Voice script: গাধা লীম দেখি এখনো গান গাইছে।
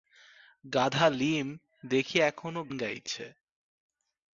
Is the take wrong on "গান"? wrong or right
wrong